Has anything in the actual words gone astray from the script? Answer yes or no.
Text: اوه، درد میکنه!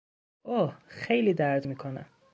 yes